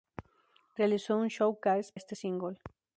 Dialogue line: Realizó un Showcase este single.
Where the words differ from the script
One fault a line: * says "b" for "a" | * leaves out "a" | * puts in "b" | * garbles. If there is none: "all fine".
all fine